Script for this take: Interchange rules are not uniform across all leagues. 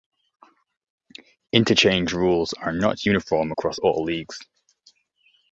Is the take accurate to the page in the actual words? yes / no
yes